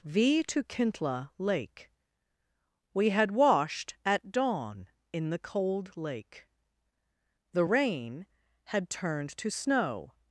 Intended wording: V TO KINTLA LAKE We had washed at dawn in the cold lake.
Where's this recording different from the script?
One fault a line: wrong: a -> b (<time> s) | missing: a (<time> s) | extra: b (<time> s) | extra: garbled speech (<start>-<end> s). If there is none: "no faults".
extra: The rain had turned to snow (7.5 s)